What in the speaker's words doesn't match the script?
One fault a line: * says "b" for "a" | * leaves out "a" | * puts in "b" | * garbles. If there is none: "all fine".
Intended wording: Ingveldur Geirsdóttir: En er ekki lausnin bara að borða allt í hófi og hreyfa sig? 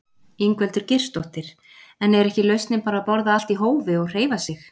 all fine